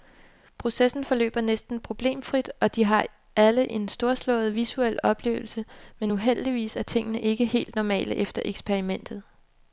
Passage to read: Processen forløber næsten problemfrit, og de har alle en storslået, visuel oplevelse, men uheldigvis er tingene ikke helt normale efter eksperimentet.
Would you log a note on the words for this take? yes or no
no